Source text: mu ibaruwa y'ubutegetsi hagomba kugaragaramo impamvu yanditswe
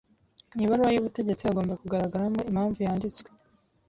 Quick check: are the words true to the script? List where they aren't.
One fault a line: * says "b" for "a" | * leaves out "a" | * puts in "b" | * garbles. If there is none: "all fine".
all fine